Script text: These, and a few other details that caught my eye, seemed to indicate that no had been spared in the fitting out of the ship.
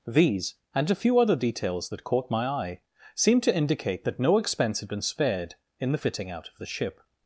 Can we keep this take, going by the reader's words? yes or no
no